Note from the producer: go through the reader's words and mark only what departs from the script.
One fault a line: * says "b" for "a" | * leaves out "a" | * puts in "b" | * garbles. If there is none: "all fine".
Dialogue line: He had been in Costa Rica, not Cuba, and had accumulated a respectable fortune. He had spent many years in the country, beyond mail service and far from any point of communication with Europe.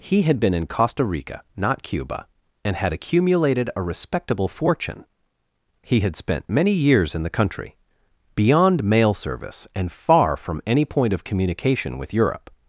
all fine